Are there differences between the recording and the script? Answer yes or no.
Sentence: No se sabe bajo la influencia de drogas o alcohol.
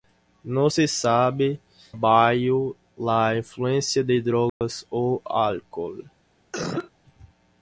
no